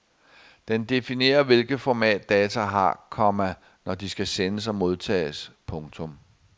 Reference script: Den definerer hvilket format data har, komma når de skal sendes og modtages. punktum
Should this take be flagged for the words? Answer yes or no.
no